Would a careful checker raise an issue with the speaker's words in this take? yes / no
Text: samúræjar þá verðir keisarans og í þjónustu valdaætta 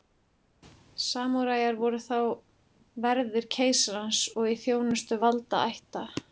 yes